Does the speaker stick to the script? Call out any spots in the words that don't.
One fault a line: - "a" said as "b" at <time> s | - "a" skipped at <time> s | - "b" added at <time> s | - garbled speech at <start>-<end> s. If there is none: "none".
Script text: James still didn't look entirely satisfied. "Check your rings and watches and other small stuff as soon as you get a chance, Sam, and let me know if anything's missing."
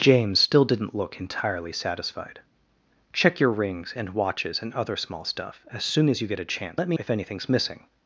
- "Sam and" skipped at 6.8 s
- "know" skipped at 7.0 s